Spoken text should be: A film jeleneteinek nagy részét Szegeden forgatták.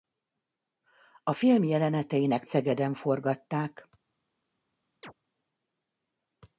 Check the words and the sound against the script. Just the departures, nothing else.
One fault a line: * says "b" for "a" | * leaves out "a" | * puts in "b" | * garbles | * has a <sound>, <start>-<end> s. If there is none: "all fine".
* leaves out "nagy részét"
* has a chirp, 5.0-5.1 s